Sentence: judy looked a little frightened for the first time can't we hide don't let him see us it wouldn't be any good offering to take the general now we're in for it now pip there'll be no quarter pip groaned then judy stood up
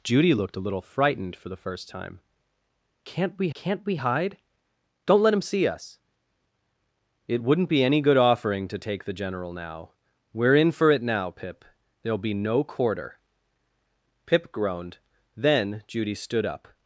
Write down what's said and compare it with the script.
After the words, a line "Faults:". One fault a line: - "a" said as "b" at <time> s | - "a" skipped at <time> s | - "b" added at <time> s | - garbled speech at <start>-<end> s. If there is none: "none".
judy looked a little frightened for the first time can't we can't we hide don't let him see us it wouldn't be any good offering to take the general now we're in for it now pip there'll be no quarter pip groaned then judy stood up
Faults:
- "can't we" added at 3.5 s